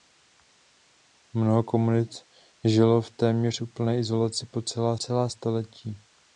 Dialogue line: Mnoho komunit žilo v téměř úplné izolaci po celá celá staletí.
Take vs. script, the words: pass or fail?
pass